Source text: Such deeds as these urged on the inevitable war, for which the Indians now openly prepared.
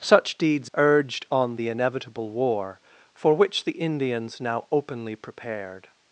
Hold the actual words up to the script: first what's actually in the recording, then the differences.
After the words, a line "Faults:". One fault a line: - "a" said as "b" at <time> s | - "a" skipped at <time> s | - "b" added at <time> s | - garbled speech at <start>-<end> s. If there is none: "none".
Such deeds urged on the inevitable war, for which the Indians now openly prepared.
Faults:
- "as these" skipped at 0.7 s